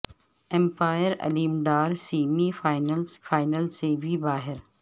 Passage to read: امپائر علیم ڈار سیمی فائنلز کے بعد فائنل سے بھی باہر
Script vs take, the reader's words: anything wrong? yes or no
yes